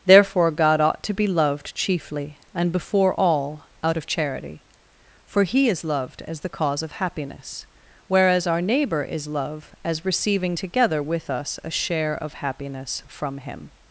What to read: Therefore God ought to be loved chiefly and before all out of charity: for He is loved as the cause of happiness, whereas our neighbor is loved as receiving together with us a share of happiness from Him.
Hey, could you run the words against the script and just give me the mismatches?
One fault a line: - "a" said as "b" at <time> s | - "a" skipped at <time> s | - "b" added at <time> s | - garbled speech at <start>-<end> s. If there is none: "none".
- "loved" said as "love" at 9.3 s